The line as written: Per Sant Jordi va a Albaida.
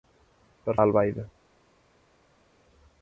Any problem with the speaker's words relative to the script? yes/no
yes